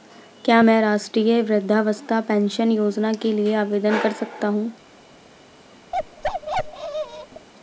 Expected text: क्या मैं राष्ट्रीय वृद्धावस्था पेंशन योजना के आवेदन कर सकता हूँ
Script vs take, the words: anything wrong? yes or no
yes